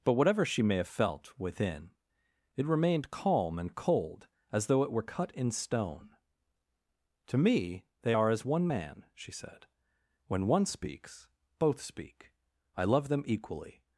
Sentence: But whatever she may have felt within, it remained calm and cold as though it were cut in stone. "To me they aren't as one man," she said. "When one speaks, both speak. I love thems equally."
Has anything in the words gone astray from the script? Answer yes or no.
yes